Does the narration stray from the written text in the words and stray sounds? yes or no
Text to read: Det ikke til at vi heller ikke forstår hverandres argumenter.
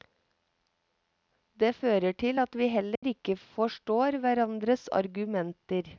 yes